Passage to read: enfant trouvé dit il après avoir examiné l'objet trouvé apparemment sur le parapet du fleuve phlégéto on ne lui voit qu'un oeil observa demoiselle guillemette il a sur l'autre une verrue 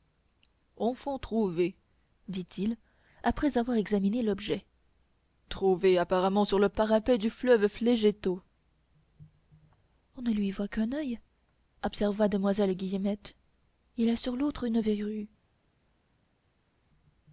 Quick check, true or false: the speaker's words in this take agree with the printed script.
true